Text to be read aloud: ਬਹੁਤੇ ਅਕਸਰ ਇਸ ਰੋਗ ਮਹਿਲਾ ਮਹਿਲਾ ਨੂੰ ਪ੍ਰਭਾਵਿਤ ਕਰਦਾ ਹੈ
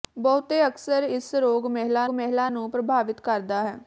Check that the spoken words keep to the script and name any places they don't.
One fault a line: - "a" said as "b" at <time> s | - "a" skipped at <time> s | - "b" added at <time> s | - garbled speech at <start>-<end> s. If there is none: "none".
none